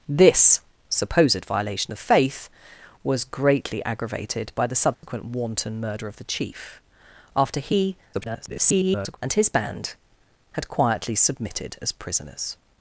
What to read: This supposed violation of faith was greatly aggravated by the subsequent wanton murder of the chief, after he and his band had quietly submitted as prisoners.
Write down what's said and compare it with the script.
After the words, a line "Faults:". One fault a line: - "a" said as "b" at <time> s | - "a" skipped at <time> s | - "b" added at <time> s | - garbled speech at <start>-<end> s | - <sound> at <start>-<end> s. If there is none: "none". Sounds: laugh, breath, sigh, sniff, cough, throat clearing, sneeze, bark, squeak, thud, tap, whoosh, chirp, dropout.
This supposed violation of faith was greatly aggravated by the subsequent wanton murder of the chief, after he [garbled] and his band had quietly submitted as prisoners.
Faults:
- dropout at 4.9-5.0 s
- garbled speech at 8.1-9.2 s